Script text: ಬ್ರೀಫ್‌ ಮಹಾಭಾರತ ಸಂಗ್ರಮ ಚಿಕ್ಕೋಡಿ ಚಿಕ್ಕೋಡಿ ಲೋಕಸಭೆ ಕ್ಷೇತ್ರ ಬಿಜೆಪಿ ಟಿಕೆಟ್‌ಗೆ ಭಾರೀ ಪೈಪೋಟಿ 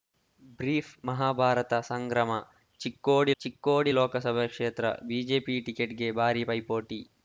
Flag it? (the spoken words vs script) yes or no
no